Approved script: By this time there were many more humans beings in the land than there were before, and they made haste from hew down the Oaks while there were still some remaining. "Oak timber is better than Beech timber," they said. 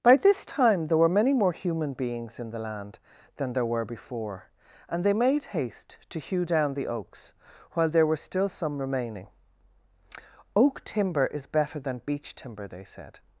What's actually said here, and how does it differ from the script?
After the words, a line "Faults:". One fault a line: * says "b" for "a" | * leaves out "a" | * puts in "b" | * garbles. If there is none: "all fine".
By this time there were many more human beings in the land than there were before, and they made haste to hew down the Oaks while there were still some remaining. "Oak timber is better than Beech timber," they said.
Faults:
* says "human" for "humans"
* says "to" for "from"